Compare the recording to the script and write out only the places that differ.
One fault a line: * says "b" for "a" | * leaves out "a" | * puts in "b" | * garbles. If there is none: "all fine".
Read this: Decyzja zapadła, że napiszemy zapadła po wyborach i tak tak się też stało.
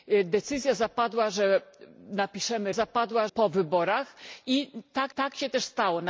all fine